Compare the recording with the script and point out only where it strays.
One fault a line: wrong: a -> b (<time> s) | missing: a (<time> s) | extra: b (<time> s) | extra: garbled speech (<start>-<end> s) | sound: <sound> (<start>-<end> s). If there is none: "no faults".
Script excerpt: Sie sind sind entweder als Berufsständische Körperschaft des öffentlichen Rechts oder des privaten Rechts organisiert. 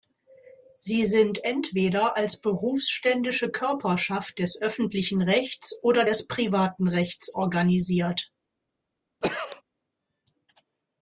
missing: sind (1.4 s)
sound: cough (9.2-9.6 s)